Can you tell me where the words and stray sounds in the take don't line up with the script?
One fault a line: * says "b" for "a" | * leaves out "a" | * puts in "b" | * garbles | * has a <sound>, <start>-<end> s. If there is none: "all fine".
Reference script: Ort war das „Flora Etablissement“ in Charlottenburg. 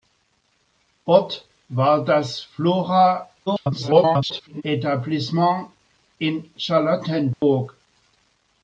* garbles
* has a dropout, 7.3-7.4 s